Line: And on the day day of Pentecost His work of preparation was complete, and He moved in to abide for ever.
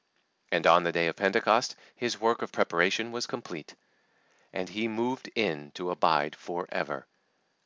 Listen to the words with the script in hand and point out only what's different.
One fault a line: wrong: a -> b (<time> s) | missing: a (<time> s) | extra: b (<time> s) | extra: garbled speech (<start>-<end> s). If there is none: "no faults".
missing: day (1.1 s)